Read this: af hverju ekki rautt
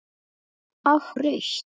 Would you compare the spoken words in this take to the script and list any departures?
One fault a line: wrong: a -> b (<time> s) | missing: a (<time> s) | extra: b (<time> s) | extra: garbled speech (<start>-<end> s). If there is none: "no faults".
missing: hverju ekki (1.1 s)